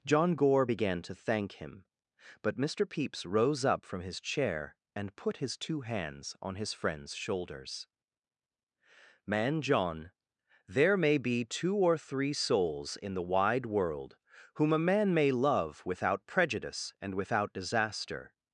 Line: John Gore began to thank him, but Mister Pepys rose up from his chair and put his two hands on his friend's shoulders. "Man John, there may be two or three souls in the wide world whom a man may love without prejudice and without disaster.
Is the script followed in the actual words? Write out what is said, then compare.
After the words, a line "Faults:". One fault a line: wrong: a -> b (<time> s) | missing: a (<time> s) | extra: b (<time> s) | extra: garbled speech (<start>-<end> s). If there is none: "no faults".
John Gore began to thank him, but Mister Pepys rose up from his chair and put his two hands on his friend's shoulders. "Man John, there may be two or three souls in the wide world whom a man may love without prejudice and without disaster.
Faults:
no faults